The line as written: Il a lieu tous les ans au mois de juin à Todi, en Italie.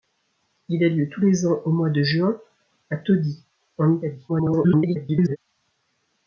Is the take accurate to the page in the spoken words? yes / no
no